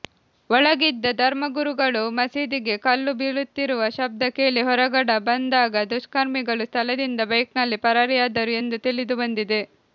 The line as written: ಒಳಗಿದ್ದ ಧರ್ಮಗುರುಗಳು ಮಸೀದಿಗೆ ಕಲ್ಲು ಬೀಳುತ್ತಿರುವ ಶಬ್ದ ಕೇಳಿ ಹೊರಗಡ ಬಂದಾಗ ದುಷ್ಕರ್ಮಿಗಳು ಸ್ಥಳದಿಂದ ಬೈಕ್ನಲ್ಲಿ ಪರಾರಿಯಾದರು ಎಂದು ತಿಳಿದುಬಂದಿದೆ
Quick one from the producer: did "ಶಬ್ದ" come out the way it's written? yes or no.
yes